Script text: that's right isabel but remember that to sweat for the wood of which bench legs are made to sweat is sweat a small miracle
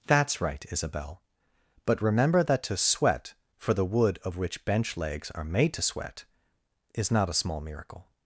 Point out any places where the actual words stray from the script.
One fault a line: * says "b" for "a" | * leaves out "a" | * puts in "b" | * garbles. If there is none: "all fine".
* says "not" for "sweat"